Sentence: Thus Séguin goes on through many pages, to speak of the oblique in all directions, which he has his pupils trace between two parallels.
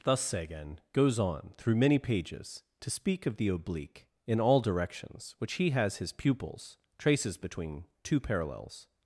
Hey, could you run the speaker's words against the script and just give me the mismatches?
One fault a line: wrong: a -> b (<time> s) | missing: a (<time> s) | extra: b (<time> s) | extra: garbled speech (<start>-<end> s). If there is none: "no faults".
wrong: trace -> traces (7.0 s)